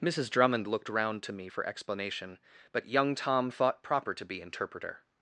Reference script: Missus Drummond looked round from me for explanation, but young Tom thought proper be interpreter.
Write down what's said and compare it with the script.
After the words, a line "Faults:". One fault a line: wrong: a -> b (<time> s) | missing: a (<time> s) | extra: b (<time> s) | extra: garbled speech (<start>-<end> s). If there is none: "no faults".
Missus Drummond looked round to me for explanation, but young Tom thought proper to be interpreter.
Faults:
wrong: from -> to (1.2 s)
extra: to (4.1 s)